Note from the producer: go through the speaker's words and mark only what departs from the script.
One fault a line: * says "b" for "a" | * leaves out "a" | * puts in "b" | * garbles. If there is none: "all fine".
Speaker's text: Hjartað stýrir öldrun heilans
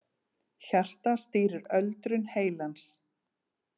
all fine